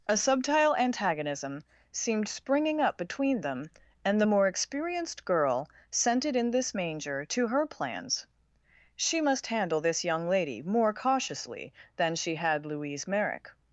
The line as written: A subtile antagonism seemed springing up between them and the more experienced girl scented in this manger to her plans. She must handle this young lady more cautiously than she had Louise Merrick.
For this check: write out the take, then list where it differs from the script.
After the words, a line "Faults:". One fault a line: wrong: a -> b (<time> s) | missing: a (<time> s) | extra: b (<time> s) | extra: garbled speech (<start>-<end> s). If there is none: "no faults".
A subtile antagonism seemed springing up between them and the more experienced girl scented in this manger to her plans. She must handle this young lady more cautiously than she had Louise Merrick.
Faults:
no faults